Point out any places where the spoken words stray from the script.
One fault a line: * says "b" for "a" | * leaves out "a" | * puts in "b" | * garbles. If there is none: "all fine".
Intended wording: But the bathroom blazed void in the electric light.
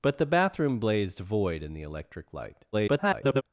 * garbles